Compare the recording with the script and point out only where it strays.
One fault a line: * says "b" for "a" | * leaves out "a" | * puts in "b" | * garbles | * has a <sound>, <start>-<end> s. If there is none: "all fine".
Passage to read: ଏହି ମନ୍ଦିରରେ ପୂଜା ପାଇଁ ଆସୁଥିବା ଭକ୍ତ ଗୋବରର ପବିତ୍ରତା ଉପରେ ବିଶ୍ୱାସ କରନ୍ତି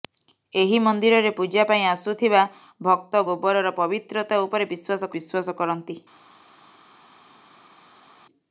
* puts in "ବିଶ୍ୱାସ"